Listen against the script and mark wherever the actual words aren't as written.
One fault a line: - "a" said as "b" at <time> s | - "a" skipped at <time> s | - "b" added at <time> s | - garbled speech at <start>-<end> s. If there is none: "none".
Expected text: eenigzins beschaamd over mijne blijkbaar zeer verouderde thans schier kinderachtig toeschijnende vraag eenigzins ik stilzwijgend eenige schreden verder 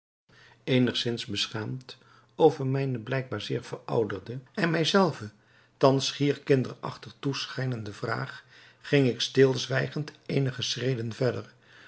- "en mij zelven" added at 4.5 s
- "eenigzins" said as "ging" at 8.8 s